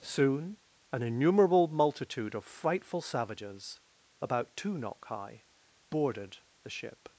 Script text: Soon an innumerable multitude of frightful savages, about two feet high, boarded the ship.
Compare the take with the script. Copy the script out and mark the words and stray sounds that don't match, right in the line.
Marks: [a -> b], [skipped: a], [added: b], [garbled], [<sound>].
Soon an innumerable multitude of frightful savages, about two [feet -> knock] high, boarded the ship.